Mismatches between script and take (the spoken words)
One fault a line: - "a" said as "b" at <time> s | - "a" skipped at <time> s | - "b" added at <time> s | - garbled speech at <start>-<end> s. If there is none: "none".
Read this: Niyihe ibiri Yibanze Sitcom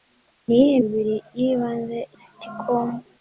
none